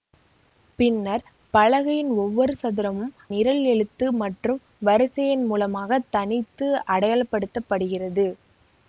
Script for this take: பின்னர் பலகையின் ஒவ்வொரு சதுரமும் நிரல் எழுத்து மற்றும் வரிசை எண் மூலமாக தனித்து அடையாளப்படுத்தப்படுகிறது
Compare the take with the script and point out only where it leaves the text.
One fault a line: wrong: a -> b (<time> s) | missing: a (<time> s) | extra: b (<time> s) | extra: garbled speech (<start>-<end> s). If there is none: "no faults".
no faults